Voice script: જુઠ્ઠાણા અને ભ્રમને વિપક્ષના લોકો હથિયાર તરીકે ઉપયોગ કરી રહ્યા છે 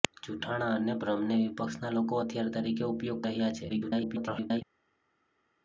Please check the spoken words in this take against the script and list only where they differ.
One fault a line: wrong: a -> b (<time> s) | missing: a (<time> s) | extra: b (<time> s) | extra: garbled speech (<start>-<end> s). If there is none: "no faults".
missing: કરી (3.2 s)
extra: garbled speech (3.7-4.6 s)